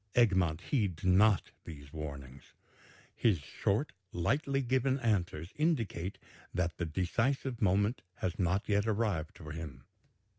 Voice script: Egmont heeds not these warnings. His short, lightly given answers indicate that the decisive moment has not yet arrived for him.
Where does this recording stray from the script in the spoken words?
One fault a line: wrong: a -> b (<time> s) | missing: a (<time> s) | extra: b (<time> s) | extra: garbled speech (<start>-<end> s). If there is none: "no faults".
no faults